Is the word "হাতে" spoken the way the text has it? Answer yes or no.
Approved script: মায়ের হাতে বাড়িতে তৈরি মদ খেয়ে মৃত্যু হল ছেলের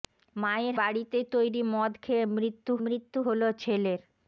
no